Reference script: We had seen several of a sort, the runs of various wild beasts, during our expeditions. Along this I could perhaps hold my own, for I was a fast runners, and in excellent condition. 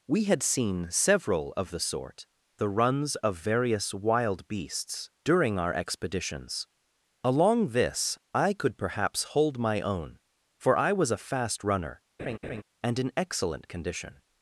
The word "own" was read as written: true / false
true